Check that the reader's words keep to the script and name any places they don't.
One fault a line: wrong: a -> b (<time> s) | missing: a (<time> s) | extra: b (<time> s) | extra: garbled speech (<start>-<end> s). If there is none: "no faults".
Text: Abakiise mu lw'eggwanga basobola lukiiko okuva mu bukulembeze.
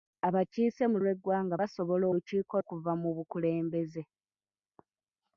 no faults